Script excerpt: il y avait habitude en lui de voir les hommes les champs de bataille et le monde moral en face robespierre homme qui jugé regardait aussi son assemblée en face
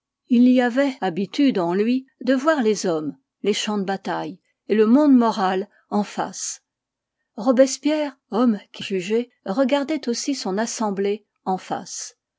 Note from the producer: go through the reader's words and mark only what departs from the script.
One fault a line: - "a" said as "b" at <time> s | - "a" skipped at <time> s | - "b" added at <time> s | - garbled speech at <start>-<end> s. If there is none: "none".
none